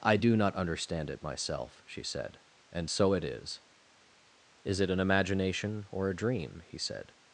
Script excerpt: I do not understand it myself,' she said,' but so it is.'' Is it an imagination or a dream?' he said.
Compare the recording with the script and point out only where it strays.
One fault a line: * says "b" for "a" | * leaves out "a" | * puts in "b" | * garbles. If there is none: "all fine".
* says "and" for "but"